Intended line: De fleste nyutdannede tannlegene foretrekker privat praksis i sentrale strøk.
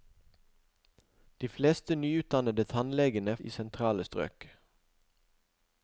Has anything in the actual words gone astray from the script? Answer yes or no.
yes